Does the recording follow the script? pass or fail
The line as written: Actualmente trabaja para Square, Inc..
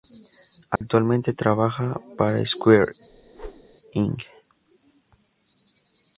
pass